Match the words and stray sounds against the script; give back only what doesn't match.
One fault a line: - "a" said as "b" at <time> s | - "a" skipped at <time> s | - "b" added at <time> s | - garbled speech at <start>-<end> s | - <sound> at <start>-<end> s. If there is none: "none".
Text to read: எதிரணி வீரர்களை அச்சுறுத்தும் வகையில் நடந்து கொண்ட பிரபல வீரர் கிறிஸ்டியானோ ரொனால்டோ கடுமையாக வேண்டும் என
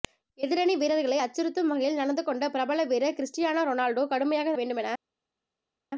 none